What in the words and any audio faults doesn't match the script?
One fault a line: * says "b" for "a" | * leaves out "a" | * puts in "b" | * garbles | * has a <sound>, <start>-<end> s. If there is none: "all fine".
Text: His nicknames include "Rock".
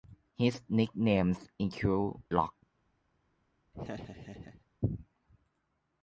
* has a laugh, 3.7-4.7 s